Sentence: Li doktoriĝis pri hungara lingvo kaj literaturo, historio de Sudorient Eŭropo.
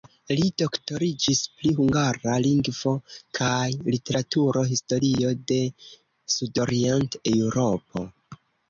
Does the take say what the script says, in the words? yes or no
yes